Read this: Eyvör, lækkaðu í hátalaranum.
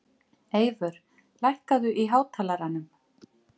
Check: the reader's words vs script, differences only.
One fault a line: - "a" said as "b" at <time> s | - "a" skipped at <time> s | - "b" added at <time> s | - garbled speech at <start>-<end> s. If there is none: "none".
none